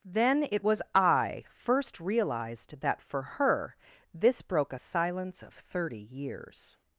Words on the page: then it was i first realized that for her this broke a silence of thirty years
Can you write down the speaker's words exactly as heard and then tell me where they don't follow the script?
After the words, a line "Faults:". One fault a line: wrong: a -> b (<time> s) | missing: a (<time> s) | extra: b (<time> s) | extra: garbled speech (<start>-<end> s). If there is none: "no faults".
then it was i first realized that for her this broke a silence of thirty years
Faults:
no faults